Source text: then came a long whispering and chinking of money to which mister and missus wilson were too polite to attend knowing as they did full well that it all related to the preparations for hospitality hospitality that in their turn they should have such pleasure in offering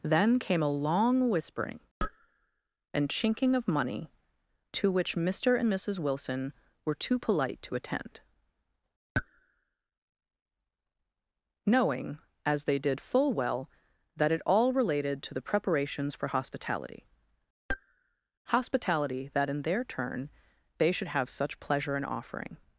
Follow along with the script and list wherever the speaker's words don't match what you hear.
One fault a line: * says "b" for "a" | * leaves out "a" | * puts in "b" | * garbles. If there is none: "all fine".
all fine